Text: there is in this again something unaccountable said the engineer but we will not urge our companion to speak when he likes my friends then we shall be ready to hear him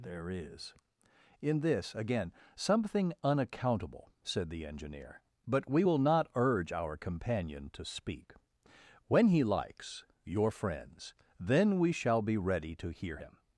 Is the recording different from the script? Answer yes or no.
yes